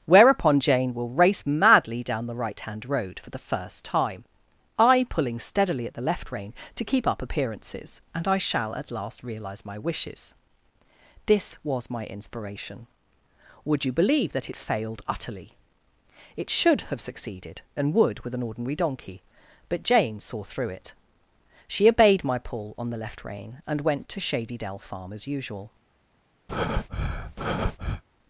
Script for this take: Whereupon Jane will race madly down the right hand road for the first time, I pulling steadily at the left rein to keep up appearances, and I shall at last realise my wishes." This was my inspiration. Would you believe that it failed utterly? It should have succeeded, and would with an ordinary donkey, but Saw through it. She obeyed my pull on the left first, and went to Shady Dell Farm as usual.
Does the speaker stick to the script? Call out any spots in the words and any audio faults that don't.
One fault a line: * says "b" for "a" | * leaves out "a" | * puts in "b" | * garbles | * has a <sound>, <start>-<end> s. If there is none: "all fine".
* puts in "Jane"
* says "rein" for "first"
* has a breath, 26.5-28.0 s